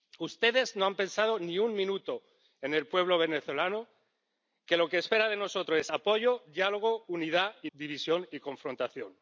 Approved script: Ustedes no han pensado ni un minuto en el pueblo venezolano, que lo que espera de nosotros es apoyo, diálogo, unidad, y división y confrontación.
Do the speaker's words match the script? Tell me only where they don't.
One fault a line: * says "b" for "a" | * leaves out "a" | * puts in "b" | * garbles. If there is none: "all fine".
all fine